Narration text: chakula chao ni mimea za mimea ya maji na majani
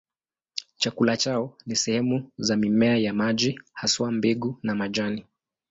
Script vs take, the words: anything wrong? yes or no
yes